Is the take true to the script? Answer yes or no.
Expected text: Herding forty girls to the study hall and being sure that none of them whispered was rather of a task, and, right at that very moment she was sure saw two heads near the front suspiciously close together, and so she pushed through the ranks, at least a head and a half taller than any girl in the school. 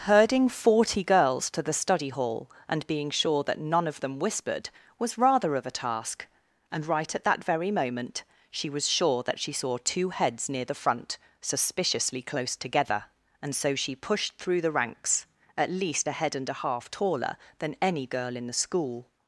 no